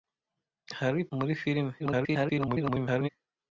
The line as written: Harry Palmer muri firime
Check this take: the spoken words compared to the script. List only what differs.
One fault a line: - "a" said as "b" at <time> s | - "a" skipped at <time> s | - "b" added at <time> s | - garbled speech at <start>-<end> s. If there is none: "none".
- "Palmer" skipped at 1.0 s
- garbled speech at 1.8-3.1 s